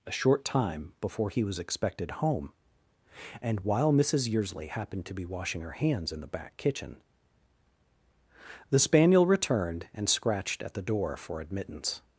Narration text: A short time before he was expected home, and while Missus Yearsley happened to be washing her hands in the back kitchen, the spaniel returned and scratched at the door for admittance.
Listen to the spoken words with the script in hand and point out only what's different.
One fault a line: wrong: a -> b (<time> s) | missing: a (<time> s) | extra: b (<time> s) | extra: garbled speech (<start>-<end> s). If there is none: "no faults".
no faults